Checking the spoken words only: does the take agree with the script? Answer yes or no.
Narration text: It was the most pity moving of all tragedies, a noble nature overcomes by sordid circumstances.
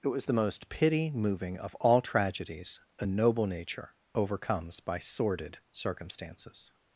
yes